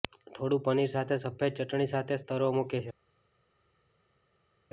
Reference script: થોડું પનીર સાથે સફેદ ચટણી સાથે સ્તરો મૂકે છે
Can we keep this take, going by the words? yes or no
yes